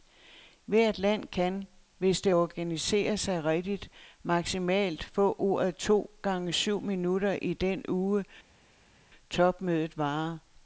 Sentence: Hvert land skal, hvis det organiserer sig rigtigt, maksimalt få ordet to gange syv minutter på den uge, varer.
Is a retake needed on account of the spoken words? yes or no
yes